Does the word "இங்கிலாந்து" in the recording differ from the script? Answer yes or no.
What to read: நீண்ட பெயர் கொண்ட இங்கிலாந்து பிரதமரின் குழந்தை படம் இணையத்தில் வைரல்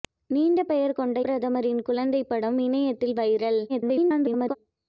yes